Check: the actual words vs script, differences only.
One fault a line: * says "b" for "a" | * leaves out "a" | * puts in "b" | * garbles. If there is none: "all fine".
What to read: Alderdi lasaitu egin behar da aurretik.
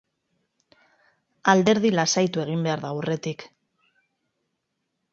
all fine